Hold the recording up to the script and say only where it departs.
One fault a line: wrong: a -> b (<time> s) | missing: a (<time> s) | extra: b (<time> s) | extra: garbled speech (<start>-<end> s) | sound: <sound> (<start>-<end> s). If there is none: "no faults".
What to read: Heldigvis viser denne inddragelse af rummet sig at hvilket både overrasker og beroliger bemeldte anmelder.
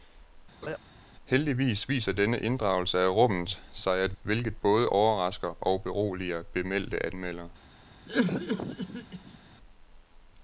sound: laugh (0.6-0.8 s)
sound: cough (8.1-9.4 s)